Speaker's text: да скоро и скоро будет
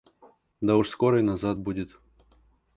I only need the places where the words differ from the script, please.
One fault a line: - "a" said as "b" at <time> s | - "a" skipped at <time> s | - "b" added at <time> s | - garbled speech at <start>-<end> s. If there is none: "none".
- "уж" added at 0.8 s
- "скоро" said as "назад" at 1.2 s